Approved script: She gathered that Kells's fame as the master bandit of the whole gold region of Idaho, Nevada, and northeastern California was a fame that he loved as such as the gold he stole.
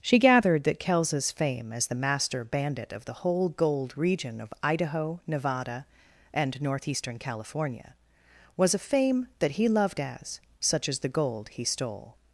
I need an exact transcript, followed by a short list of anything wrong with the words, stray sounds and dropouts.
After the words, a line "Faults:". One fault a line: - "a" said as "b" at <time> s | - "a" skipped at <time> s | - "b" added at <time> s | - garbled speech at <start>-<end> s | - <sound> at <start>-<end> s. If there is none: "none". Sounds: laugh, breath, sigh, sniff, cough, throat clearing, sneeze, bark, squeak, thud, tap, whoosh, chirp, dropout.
She gathered that Kells's fame as the master bandit of the whole gold region of Idaho, Nevada, and northeastern California was a fame that he loved as such as the gold he stole.
Faults:
none